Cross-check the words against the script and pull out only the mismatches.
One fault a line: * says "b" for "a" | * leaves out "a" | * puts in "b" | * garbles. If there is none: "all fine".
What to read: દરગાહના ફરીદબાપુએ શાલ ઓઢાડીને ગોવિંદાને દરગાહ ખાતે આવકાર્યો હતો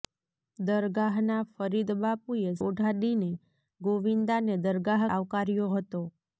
* leaves out "શાલ"
* leaves out "ખાતે"